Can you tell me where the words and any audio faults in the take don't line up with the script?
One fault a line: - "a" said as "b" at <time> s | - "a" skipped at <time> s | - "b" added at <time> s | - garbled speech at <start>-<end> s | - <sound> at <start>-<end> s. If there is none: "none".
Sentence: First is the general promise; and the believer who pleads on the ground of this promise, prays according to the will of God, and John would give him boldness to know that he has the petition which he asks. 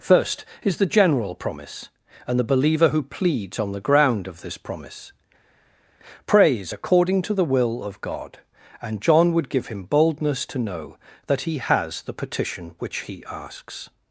none